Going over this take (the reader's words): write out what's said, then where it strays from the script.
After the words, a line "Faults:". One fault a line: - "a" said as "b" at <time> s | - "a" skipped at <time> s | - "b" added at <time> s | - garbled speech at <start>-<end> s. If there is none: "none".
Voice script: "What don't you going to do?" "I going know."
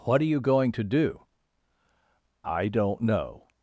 "What are you going to do?" "I don't know."
Faults:
- "don't" said as "are" at 0.2 s
- "going" said as "don't" at 2.7 s